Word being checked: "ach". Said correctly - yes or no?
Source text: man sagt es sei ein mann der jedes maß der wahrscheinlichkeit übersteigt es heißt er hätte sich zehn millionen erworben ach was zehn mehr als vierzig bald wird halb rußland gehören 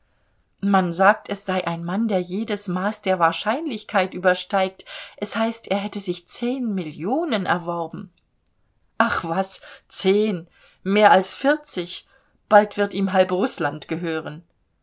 yes